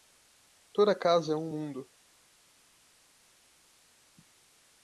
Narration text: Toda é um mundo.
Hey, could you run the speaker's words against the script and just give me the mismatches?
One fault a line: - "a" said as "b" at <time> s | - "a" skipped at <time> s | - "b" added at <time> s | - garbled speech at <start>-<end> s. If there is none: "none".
- "casa" added at 0.9 s